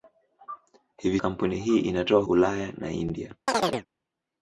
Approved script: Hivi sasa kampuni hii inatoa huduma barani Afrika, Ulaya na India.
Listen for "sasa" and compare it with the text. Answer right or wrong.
wrong